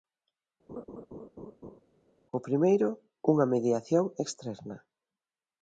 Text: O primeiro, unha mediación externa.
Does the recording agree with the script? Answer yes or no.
yes